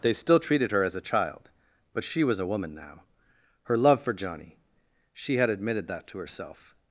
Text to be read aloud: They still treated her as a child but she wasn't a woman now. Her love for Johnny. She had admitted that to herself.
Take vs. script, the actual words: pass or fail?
fail